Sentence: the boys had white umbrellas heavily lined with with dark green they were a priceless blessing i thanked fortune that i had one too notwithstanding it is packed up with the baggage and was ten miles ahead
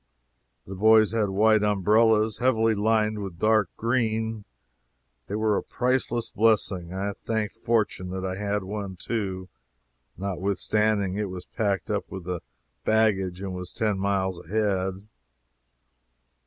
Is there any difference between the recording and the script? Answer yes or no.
yes